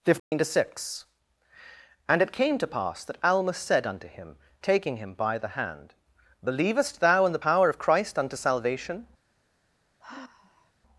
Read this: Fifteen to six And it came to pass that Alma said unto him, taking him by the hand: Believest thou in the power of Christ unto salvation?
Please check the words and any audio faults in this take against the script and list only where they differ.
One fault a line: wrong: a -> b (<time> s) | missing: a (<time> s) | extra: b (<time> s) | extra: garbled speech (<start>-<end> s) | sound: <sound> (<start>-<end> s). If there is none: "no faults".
sound: dropout (0.2-0.3 s)
sound: sigh (10.0-10.7 s)